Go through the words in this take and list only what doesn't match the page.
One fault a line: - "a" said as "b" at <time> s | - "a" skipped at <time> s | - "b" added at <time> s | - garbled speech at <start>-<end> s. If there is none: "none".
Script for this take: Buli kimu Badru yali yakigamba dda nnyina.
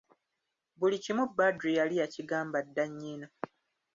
none